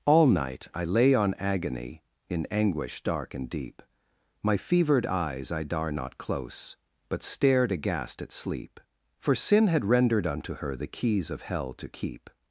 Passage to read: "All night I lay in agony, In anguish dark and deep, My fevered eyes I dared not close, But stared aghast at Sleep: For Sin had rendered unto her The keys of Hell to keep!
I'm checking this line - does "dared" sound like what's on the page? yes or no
no